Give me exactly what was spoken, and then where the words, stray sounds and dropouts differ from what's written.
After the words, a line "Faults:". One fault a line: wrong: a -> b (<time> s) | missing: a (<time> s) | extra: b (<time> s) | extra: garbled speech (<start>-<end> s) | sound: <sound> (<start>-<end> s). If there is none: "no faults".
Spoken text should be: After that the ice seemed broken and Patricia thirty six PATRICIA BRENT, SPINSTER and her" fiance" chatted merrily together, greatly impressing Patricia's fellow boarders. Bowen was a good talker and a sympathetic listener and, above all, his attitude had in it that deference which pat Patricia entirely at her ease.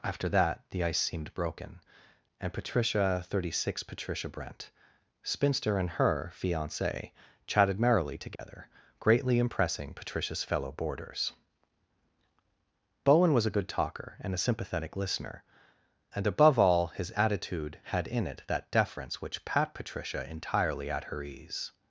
After that the ice seemed broken and Patricia thirty six PATRICIA BRENT, SPINSTER and her" fiance" chatted merrily together, greatly impressing Patricia's fellow boarders. Bowen was a good talker and a sympathetic listener and, above all, his attitude had in it that deference which pat Patricia entirely at her ease.
Faults:
sound: dropout (8.4-8.4 s)